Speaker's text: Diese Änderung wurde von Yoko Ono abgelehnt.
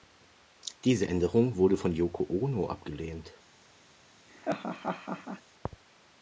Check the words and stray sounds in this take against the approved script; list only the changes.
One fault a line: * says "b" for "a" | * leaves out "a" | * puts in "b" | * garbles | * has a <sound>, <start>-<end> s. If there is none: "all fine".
* has a laugh, 4.3-5.4 s